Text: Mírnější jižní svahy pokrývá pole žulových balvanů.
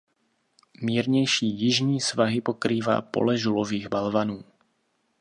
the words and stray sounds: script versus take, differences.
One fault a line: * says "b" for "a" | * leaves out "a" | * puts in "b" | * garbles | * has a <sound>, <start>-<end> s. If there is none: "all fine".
all fine